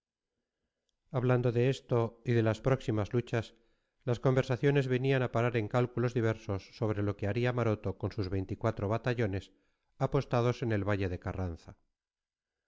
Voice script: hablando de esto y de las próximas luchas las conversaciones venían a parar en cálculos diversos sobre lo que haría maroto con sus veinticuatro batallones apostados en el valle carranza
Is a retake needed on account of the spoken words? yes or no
yes